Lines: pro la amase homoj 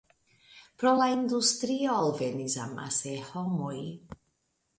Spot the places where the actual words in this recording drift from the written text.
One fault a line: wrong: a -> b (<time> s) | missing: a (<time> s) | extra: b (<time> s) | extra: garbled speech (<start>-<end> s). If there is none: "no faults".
extra: industrio alvenis (1.1 s)